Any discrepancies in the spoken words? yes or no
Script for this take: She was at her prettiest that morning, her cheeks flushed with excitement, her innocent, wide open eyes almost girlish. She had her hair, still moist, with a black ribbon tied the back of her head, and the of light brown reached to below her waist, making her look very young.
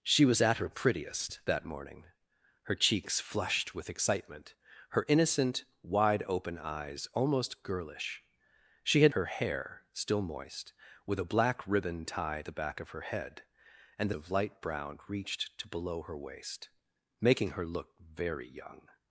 no